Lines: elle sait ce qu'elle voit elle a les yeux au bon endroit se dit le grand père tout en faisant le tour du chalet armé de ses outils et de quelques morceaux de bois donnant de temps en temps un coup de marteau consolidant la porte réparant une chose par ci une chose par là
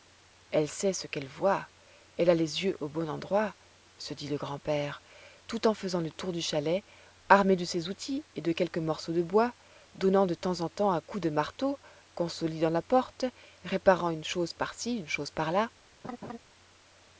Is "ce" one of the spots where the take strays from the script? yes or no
no